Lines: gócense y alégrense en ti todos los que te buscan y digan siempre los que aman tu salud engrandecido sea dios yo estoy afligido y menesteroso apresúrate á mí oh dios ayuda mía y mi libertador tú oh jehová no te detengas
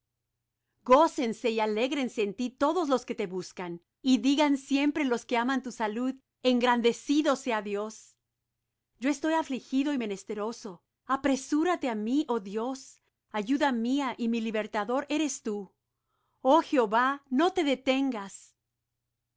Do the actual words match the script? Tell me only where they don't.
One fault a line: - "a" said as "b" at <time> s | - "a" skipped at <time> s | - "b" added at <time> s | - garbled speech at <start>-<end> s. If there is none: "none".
- "eres" added at 15.1 s